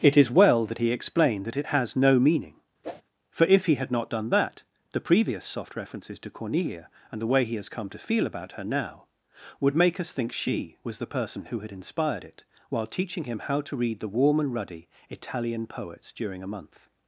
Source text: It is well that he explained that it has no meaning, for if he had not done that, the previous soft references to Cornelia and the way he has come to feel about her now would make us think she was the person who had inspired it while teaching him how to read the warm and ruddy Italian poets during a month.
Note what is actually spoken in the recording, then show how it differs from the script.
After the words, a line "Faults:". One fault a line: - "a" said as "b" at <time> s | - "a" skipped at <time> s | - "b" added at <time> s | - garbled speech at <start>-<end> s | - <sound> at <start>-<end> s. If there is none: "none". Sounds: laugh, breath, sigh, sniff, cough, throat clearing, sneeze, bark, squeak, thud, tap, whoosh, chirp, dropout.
It is well that he explained that it has no meaning, for if he had not done that, the previous soft references to Cornelia and the way he has come to feel about her now would make us think she was the person who had inspired it while teaching him how to read the warm and ruddy Italian poets during a month.
Faults:
- whoosh at 2.8-3.0 s